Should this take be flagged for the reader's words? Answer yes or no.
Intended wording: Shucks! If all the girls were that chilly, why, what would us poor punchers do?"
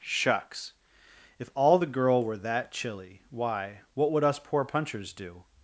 yes